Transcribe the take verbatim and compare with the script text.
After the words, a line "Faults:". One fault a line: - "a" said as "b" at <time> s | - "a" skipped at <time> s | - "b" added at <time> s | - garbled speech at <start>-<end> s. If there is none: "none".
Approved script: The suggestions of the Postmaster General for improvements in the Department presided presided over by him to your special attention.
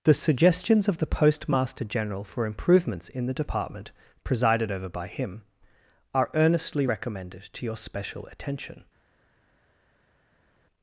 The suggestions of the Postmaster General for improvements in the Department presided over by him are earnestly recommended to your special attention.
Faults:
- "presided" skipped at 4.7 s
- "are earnestly recommended" added at 6.1 s